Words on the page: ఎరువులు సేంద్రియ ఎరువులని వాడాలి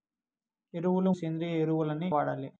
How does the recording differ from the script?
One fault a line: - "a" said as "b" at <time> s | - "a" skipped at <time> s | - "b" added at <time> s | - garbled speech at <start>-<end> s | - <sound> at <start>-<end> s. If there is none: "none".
none